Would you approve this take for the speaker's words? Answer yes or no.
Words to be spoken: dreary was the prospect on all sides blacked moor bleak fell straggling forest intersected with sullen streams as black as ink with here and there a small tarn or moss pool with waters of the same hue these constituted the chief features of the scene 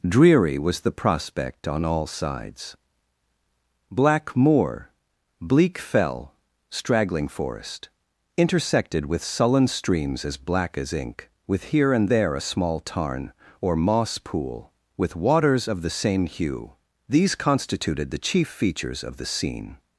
no